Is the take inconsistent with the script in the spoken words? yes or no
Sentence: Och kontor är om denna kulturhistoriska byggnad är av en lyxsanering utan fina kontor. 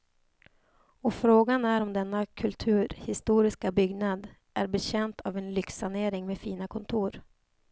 yes